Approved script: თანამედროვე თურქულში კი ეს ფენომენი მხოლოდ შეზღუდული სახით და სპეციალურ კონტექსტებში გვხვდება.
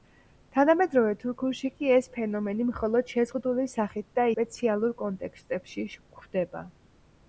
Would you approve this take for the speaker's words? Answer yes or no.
yes